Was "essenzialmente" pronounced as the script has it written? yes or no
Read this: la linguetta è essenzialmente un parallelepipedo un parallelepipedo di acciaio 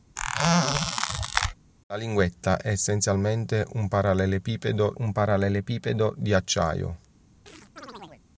yes